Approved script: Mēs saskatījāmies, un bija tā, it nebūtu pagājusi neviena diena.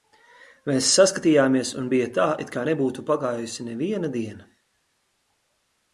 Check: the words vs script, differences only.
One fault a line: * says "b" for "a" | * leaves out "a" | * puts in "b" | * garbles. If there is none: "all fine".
* puts in "kā"